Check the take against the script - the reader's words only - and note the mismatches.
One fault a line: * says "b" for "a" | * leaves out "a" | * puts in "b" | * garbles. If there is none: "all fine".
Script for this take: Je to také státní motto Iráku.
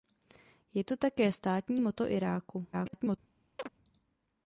* garbles